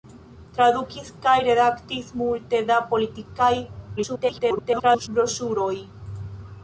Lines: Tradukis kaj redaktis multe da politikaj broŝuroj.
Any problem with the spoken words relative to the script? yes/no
yes